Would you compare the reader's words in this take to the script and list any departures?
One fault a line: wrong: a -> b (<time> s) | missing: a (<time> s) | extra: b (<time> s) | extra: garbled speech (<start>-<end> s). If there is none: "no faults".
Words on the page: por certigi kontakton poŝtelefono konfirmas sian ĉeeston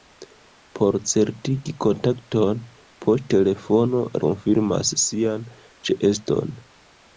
no faults